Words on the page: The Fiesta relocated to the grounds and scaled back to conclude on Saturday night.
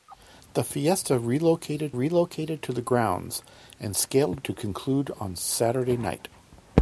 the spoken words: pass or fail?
fail